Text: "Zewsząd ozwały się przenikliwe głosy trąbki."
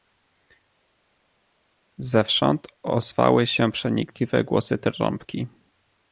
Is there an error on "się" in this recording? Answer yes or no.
no